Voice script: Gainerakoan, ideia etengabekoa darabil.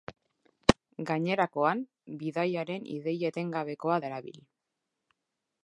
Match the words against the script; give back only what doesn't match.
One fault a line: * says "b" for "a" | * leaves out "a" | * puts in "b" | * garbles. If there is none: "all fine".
* puts in "bidaiaren"